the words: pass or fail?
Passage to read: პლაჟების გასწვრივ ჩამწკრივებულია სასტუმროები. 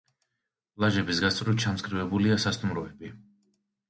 pass